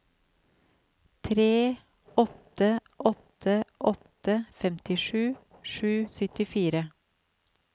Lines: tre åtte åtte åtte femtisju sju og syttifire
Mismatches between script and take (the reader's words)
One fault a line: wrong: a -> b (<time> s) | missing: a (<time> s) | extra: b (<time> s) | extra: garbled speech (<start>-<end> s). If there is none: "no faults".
no faults